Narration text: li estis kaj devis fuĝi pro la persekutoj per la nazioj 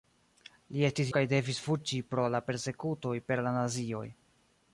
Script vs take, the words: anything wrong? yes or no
no